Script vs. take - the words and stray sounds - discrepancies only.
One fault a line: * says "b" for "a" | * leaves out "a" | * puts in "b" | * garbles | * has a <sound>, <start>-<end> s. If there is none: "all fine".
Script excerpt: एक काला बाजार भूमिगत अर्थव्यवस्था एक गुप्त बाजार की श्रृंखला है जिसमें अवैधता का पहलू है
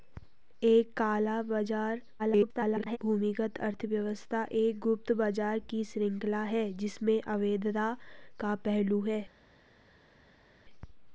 * garbles